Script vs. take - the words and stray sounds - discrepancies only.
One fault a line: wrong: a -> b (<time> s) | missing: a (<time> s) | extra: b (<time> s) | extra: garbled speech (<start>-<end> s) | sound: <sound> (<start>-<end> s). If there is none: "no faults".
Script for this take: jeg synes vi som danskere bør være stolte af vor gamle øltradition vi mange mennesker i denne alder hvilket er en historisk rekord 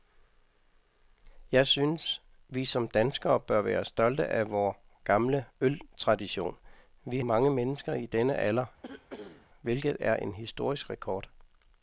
sound: cough (8.8-9.5 s)